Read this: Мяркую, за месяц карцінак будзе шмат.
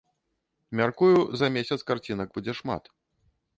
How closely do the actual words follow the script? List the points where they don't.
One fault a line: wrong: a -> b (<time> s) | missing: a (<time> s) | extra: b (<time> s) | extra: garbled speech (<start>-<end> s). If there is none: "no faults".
no faults